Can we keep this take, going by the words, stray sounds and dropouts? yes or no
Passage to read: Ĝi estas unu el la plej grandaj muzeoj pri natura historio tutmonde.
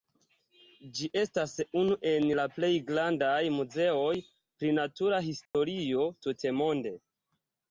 no